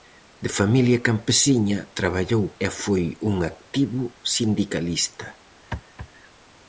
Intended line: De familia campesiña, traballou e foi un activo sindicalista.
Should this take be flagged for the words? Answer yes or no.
no